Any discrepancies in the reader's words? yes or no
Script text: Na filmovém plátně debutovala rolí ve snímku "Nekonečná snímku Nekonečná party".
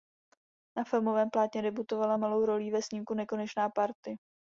yes